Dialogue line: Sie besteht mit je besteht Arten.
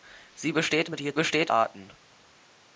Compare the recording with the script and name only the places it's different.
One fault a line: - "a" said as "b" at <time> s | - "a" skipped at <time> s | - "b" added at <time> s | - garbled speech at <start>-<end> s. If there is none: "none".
none